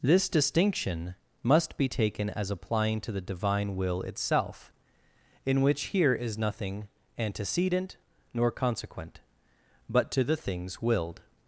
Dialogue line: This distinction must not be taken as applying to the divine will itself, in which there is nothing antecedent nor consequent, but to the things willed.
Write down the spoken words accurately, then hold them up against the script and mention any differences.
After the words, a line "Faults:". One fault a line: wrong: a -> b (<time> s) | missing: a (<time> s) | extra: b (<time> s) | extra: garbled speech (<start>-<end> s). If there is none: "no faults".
This distinction must be taken as applying to the divine will itself, in which here is nothing antecedent nor consequent, but to the things willed.
Faults:
missing: not (1.8 s)
wrong: there -> here (5.9 s)